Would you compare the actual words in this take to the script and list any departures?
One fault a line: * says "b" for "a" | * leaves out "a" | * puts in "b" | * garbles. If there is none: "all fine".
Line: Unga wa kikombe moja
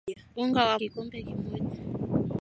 all fine